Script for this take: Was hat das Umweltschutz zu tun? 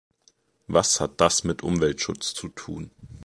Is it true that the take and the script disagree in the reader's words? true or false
true